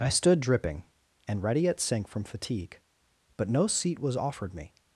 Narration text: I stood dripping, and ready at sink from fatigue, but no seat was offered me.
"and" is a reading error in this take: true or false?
false